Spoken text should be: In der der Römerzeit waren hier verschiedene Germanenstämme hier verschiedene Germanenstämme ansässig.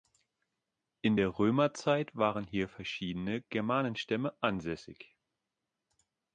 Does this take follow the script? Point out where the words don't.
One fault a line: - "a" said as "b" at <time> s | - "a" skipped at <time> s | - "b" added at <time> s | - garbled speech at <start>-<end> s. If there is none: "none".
- "der" skipped at 1.4 s
- "hier verschiedene Germanenstämme" skipped at 4.4 s